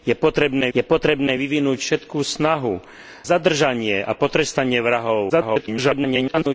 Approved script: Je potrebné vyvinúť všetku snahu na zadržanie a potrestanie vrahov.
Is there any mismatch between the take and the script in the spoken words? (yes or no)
yes